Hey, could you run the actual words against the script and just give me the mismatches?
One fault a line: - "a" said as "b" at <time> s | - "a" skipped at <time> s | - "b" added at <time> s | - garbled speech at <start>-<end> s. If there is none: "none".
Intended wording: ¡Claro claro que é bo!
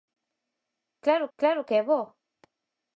none